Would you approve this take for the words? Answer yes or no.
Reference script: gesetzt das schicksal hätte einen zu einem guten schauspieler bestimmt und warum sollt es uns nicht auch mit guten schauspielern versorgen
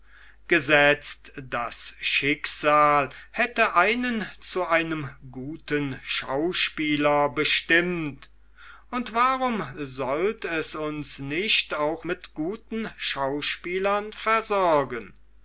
yes